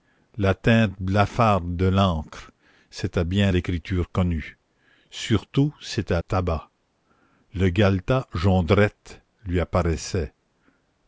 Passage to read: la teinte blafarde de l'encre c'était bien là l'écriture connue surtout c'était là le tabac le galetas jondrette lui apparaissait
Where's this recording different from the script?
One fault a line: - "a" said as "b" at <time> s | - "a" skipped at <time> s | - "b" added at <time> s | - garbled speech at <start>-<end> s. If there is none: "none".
- "là" skipped at 3.5 s
- "là le" skipped at 6.2 s